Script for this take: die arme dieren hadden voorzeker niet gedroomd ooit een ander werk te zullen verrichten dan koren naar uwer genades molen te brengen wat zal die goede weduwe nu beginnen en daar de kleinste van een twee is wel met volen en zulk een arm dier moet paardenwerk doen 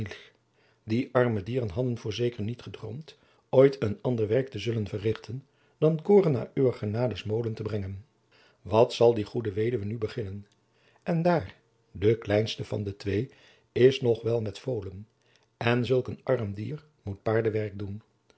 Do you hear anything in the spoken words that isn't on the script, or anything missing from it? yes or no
yes